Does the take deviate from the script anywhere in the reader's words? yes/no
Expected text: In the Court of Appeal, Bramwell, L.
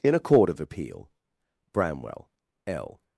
yes